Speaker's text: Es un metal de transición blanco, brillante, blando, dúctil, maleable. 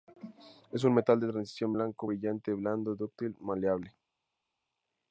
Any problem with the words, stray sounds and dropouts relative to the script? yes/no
no